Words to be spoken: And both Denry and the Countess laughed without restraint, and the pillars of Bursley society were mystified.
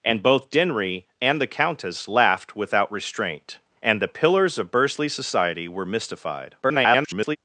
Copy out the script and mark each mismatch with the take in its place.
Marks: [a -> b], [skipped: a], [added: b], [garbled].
And both Denry and the Countess laughed without restraint, and the pillars of Bursley society were mystified. [garbled]